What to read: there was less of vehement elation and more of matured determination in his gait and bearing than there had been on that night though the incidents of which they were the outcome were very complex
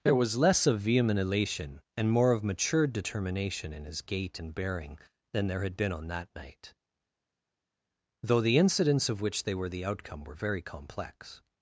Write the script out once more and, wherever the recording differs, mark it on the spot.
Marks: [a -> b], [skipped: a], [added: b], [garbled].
there was less of vehement elation and more of matured determination in his gait and bearing than there had been on that night though the incidents of which they were the outcome were very complex